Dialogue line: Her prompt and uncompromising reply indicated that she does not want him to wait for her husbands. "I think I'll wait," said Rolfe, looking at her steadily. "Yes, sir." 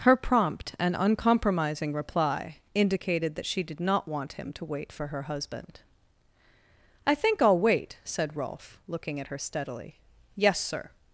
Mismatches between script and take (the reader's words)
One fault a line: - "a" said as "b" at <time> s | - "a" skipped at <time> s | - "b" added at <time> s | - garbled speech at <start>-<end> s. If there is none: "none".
- "does" said as "did" at 3.6 s
- "husbands" said as "husband" at 5.2 s